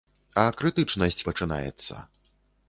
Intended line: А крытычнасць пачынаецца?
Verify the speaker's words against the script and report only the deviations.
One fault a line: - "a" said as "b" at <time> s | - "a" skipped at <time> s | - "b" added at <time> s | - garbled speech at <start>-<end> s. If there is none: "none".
none